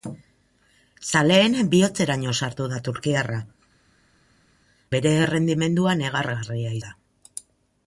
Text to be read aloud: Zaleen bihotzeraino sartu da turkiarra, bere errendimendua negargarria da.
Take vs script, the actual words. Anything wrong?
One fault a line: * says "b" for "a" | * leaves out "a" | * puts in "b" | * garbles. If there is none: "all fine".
all fine